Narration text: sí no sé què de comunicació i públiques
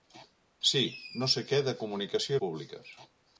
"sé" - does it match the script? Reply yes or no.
yes